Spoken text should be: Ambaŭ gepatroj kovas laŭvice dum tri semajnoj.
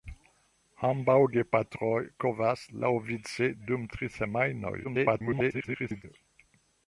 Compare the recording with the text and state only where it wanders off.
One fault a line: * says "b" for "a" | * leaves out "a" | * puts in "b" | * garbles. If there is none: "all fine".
* garbles